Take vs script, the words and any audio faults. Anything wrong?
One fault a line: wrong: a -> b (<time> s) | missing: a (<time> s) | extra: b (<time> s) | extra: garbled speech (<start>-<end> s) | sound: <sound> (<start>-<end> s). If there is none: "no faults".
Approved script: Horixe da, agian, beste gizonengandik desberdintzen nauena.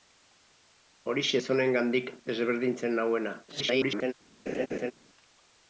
missing: da agian beste (1.4 s)
extra: garbled speech (3.5-4.1 s)
sound: laugh (4.5-4.9 s)